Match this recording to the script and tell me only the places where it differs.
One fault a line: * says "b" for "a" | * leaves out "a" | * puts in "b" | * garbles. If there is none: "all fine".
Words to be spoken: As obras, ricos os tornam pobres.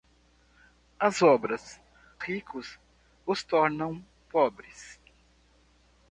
all fine